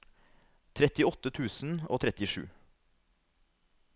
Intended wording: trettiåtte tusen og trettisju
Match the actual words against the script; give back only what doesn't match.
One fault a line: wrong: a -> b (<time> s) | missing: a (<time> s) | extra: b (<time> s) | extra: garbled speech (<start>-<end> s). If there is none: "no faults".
no faults